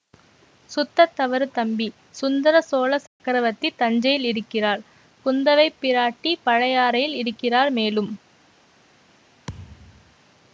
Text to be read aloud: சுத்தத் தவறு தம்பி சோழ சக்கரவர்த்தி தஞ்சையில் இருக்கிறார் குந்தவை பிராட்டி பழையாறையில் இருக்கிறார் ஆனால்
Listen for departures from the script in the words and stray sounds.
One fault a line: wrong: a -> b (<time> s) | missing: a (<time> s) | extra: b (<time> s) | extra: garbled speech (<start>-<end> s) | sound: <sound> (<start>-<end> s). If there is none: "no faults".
extra: சுந்தர (2.2 s)
sound: dropout (3.1-3.2 s)
wrong: ஆனால் -> மேலும் (7.7 s)
sound: thud (9.5-10.2 s)